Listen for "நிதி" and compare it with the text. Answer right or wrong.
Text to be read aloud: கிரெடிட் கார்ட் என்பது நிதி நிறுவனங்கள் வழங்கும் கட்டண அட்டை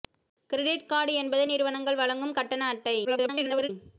wrong